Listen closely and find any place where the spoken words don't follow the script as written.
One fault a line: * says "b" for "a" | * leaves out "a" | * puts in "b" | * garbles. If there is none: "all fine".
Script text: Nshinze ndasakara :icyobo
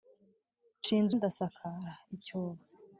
all fine